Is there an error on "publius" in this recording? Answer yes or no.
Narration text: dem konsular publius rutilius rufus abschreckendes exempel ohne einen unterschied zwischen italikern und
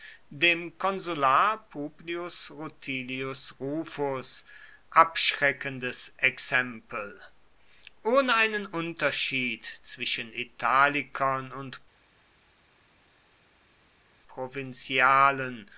no